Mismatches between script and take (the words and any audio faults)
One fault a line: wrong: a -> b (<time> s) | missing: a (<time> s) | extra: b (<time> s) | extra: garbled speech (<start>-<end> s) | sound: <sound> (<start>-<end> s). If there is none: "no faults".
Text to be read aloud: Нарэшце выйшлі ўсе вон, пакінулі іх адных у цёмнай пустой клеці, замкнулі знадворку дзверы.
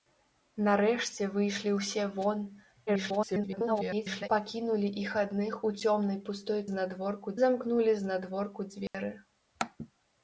extra: garbled speech (2.9-4.3 s)
wrong: клеці -> знадворку (6.7 s)
sound: dropout (8.9-8.9 s)